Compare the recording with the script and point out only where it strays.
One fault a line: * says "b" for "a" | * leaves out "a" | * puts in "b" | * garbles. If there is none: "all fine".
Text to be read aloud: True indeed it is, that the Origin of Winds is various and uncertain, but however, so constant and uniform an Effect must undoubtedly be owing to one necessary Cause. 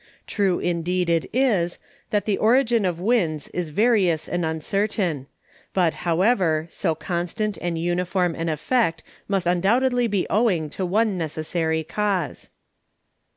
all fine